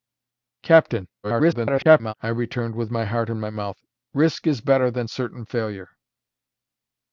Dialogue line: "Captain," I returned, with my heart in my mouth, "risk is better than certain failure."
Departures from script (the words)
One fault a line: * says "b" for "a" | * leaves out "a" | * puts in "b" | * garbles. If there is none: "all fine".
* garbles